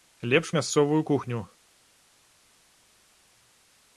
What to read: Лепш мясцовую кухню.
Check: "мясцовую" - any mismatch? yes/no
no